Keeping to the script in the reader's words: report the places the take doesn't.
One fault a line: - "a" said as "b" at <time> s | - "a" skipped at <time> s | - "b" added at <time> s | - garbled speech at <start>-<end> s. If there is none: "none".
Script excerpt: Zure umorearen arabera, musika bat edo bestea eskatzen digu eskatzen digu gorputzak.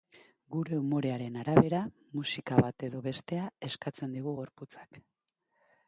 - "Zure" said as "Gure" at 0.5 s
- "eskatzen digu" skipped at 4.3 s